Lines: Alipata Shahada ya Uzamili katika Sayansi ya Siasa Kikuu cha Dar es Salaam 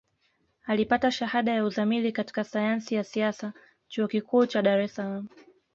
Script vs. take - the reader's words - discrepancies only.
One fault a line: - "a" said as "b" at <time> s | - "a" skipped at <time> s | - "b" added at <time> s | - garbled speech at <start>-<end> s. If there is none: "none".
- "Chuo" added at 3.9 s